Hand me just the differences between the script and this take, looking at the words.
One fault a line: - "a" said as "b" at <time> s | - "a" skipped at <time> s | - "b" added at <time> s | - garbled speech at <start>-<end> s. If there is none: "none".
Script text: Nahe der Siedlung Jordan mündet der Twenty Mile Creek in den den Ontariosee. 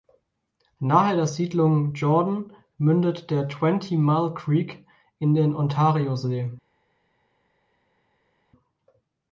- "den" skipped at 5.5 s